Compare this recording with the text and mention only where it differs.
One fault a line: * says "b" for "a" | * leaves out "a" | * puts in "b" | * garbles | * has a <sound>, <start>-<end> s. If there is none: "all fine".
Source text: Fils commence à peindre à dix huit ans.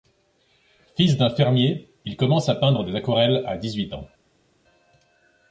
* puts in "d'un fermier il"
* puts in "des aquarelles"